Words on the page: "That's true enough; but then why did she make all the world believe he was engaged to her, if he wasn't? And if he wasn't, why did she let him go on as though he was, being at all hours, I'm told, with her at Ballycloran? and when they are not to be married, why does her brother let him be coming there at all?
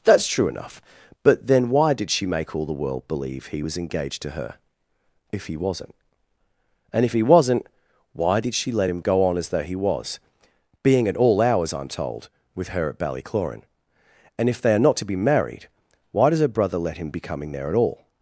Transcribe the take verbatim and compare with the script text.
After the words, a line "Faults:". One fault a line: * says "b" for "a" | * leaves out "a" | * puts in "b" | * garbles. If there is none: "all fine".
"That's true enough; but then why did she make all the world believe he was engaged to her, if he wasn't? And if he wasn't, why did she let him go on as though he was, being at all hours, I'm told, with her at Ballycloran? and if they are not to be married, why does her brother let him be coming there at all?
Faults:
* says "if" for "when"